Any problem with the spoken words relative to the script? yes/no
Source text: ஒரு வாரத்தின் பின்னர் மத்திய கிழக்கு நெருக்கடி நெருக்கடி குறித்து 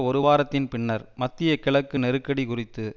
yes